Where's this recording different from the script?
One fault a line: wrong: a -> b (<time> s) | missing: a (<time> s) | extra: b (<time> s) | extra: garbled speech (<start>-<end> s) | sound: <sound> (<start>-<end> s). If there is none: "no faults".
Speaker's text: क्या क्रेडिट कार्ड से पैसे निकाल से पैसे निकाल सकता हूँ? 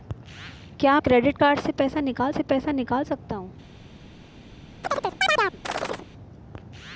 sound: chirp (4.8-6.1 s)